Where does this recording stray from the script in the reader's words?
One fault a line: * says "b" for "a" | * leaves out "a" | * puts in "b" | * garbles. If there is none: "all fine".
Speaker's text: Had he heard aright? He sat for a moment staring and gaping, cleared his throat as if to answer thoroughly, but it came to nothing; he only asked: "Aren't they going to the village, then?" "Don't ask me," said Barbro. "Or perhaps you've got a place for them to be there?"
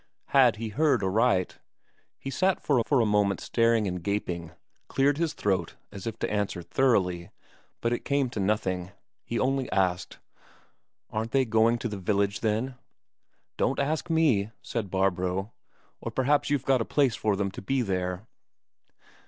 * puts in "for"